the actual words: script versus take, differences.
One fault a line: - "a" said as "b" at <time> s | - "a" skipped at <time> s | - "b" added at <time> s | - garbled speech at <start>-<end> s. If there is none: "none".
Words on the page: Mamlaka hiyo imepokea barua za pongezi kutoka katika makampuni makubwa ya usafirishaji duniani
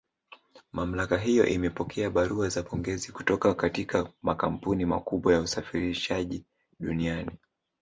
none